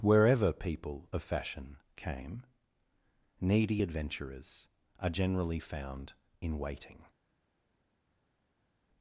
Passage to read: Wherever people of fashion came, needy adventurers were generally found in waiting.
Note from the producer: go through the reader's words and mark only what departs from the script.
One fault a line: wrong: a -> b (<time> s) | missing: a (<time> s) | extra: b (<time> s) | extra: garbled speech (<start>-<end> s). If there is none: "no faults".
wrong: were -> are (5.0 s)